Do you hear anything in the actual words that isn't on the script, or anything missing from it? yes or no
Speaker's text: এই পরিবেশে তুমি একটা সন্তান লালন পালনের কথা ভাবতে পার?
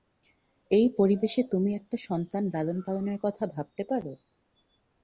no